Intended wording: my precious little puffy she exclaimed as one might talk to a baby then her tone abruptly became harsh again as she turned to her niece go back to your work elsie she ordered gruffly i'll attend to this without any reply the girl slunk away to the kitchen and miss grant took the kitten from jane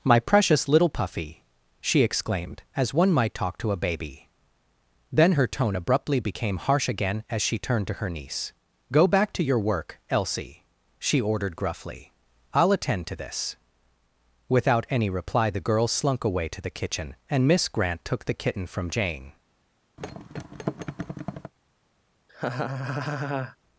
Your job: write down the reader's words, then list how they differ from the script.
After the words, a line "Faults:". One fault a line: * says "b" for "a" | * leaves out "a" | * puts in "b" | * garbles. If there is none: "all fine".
my precious little puffy she exclaimed as one might talk to a baby then her tone abruptly became harsh again as she turned to her niece go back to your work elsie she ordered gruffly i'll attend to this without any reply the girl slunk away to the kitchen and miss grant took the kitten from jane
Faults:
all fine